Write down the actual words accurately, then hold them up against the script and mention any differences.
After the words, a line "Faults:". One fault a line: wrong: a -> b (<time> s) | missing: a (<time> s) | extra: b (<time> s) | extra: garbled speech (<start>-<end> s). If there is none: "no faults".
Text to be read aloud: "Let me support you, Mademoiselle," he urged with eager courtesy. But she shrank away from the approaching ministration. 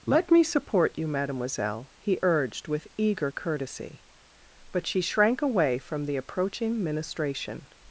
"Let me support you, Mademoiselle," he urged with eager courtesy. But she shrank away from the approaching ministration.
Faults:
no faults